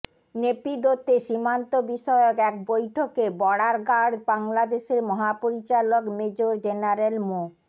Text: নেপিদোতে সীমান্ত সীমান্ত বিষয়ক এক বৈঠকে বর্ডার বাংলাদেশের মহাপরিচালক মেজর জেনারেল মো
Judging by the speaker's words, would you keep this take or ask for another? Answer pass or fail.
fail